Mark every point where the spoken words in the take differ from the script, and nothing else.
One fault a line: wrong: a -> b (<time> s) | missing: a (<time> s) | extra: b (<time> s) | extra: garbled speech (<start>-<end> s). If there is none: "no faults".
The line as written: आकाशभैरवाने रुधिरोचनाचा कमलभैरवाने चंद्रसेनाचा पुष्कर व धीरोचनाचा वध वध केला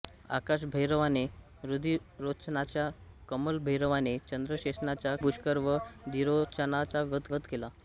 no faults